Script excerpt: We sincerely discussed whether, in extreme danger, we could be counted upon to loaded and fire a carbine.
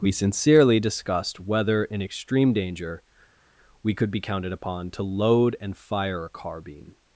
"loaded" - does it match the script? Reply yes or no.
no